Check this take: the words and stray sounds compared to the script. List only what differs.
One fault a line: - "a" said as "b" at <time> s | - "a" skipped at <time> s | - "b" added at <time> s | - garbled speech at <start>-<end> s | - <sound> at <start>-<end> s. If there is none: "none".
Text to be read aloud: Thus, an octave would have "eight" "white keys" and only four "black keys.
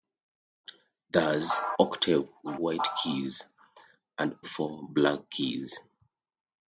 - "an" skipped at 1.6 s
- "have eight" skipped at 2.6 s
- "only" skipped at 4.4 s